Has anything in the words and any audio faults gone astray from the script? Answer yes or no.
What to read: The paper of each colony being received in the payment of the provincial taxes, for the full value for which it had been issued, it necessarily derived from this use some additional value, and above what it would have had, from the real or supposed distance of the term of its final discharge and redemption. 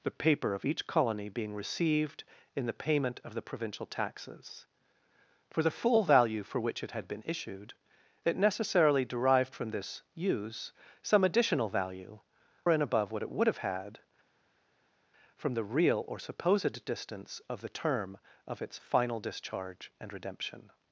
no